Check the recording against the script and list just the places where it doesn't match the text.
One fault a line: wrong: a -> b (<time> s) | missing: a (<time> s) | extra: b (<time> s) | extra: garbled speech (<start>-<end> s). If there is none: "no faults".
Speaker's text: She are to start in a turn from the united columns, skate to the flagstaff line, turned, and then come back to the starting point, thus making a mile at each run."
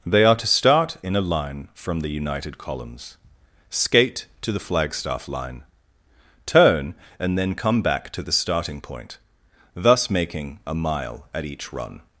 wrong: She -> They (0.1 s)
wrong: turn -> line (1.2 s)
wrong: turned -> turn (6.5 s)